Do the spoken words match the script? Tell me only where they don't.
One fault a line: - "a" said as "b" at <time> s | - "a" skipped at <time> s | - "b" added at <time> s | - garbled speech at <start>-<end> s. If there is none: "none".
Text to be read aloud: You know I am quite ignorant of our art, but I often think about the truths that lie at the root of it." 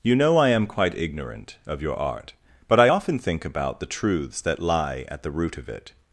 - "our" said as "your" at 1.8 s